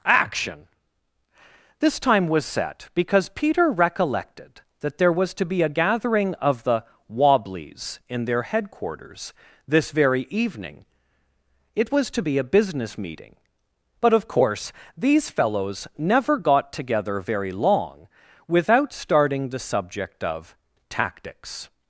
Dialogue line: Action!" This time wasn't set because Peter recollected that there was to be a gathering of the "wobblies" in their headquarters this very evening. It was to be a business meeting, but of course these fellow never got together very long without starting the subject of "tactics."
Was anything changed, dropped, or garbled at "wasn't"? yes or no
yes